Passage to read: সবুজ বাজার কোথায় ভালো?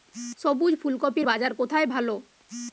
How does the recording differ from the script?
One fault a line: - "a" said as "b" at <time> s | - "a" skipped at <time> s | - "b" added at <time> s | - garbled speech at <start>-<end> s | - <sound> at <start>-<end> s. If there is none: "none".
- "ফুলকপির" added at 0.8 s